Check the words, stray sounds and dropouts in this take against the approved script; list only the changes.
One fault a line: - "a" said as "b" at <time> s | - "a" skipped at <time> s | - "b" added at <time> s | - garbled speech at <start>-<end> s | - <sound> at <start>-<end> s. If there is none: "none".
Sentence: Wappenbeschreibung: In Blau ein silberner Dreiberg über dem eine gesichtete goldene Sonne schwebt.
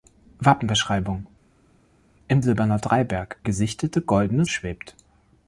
- "Blau ein" skipped at 2.4 s
- "über dem eine" skipped at 3.4 s
- "Sonne" skipped at 4.4 s